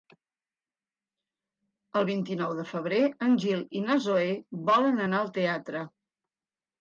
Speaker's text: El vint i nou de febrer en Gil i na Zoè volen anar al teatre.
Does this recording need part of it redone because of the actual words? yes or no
no